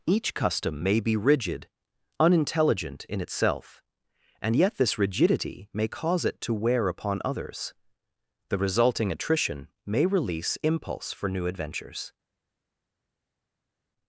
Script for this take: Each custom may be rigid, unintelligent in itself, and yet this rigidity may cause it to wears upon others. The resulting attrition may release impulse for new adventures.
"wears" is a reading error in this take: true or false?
true